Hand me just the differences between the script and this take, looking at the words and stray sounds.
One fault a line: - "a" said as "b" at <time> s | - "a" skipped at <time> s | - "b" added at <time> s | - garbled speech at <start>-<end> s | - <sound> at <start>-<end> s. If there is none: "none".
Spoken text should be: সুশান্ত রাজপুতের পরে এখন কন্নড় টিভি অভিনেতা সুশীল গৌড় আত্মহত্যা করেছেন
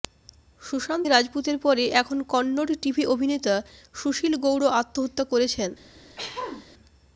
- throat clearing at 6.2-6.7 s